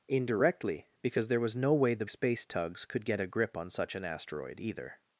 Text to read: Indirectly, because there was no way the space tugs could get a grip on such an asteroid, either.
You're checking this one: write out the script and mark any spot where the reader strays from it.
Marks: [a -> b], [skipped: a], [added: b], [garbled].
Indirectly, because there was no way the space tugs could get a grip on such an asteroid, either.